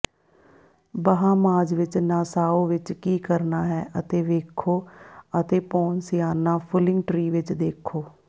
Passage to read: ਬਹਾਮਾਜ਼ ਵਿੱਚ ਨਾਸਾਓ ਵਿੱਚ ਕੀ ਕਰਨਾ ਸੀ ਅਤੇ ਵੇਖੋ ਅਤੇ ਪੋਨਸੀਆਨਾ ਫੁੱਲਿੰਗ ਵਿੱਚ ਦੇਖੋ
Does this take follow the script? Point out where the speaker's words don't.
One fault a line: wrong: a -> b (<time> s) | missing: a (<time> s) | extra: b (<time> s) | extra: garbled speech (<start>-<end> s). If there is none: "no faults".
wrong: ਸੀ -> ਹੈ (3.6 s)
extra: ਟ੍ਰੀ (7.1 s)